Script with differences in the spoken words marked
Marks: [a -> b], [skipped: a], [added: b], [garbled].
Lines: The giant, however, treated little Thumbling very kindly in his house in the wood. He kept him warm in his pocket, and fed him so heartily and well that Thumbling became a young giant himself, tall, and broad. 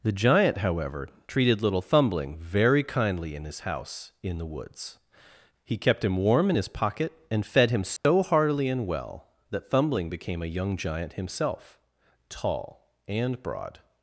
The giant, however, treated little Thumbling very kindly in his house in the [wood. -> woods] He kept him warm in his pocket, and fed him so heartily and well that Thumbling became a young giant himself, tall, and broad.